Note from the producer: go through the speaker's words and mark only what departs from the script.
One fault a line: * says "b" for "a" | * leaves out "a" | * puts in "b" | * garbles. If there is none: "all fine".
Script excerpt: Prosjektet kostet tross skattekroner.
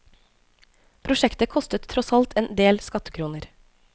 * puts in "alt en del"